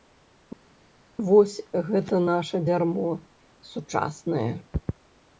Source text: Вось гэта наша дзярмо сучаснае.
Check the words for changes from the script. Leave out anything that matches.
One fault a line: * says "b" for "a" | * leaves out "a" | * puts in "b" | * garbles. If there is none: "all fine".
all fine